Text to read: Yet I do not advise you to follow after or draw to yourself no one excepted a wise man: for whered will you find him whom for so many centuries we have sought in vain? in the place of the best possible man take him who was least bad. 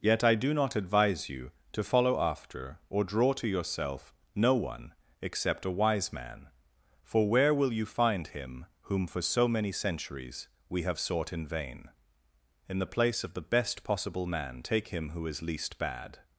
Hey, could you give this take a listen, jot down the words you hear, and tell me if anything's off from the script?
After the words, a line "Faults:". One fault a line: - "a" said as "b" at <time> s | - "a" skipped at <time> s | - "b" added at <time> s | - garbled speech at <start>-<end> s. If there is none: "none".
Yet I do not advise you to follow after or draw to yourself no one except a wise man: for where will you find him whom for so many centuries we have sought in vain? in the place of the best possible man take him who is least bad.
Faults:
- "excepted" said as "except" at 5.2 s
- "whered" said as "where" at 7.3 s
- "was" said as "is" at 15.3 s